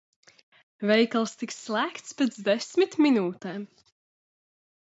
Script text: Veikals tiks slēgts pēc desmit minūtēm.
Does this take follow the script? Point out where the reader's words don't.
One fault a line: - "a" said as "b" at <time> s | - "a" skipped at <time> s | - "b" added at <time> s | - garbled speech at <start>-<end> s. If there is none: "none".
none